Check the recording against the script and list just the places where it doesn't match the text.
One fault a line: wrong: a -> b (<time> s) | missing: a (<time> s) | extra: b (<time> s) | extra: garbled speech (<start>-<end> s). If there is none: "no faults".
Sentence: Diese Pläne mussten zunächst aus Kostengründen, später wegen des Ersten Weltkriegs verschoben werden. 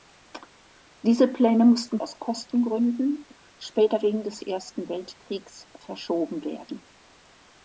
missing: zunächst (2.0 s)